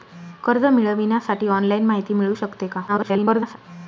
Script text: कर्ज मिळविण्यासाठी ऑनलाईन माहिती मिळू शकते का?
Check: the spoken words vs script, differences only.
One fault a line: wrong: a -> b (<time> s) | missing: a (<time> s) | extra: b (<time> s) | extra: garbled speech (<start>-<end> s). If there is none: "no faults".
extra: garbled speech (2.9-3.6 s)